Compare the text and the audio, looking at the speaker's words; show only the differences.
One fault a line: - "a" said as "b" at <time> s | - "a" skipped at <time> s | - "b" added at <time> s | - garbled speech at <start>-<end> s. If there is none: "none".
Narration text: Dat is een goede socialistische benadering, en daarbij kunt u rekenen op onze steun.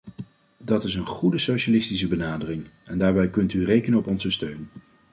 none